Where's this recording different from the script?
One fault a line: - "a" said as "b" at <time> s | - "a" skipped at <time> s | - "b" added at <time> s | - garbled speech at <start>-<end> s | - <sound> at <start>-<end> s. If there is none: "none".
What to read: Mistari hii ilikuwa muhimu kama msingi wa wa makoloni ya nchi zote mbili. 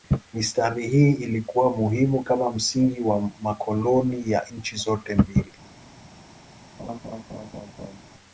- "wa" skipped at 3.3 s
- laugh at 6.8-8.0 s